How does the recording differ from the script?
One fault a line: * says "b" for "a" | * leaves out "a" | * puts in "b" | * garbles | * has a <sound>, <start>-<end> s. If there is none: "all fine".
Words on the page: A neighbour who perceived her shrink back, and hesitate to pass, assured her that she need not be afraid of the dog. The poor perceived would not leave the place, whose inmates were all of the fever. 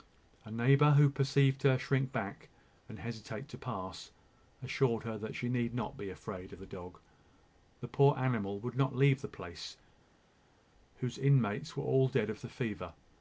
* says "animal" for "perceived"
* puts in "dead"